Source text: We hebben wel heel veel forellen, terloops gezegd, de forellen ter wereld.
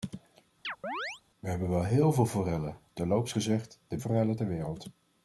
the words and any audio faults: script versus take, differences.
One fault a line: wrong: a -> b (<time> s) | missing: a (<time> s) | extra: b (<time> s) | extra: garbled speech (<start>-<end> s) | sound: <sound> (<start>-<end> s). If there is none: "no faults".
sound: chirp (0.6-1.2 s)